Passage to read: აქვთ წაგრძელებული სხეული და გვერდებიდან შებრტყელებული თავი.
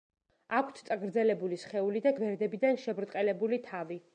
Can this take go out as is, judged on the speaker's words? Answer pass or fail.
pass